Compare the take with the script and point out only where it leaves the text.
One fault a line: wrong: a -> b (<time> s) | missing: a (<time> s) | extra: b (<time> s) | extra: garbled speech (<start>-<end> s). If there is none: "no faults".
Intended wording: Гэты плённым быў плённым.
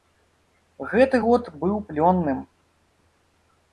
wrong: плённым -> год (1.3 s)